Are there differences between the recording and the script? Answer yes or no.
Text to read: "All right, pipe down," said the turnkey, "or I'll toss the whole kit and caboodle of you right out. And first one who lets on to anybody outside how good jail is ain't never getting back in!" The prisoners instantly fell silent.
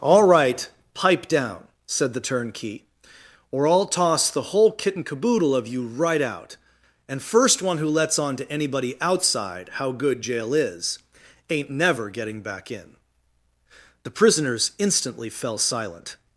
no